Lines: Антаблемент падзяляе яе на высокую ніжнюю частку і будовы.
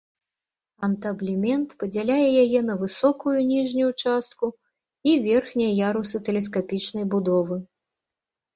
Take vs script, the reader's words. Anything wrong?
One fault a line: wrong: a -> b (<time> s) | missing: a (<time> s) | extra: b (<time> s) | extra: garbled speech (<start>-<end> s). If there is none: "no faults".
extra: верхнія ярусы тэлескапічнай (5.3 s)